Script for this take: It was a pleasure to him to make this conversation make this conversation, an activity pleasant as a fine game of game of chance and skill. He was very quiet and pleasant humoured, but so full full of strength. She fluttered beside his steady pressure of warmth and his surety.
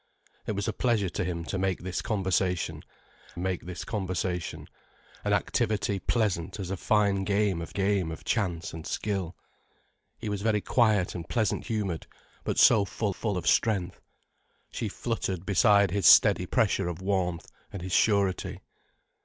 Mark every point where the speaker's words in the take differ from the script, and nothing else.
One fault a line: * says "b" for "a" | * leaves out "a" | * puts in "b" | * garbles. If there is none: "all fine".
all fine